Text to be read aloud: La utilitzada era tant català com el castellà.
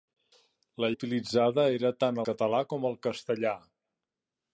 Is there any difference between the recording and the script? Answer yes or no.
no